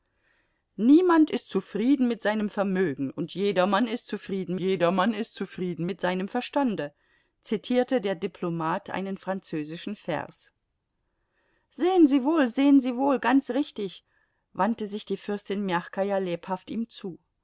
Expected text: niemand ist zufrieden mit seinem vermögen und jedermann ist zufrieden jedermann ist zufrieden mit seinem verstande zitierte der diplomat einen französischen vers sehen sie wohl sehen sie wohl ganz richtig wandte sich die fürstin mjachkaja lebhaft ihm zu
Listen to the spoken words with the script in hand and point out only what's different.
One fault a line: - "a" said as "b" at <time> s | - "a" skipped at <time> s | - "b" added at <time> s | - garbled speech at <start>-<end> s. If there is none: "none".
none